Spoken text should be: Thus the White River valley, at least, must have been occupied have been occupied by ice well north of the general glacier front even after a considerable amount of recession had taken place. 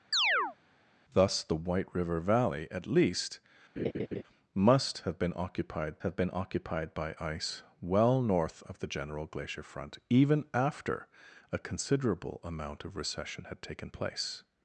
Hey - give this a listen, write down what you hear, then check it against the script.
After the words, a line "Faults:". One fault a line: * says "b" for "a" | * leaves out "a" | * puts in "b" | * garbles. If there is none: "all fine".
Thus the White River valley, at least, must have been occupied have been occupied by ice well north of the general glacier front even after a considerable amount of recession had taken place.
Faults:
all fine